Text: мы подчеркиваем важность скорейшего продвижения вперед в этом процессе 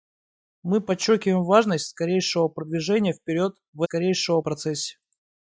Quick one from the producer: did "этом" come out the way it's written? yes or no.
no